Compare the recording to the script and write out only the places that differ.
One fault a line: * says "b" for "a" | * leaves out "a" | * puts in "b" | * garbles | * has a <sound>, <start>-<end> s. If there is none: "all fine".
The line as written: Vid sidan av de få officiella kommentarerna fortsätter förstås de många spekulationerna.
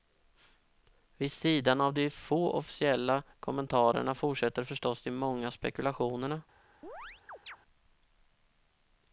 * has a chirp, 6.8-7.6 s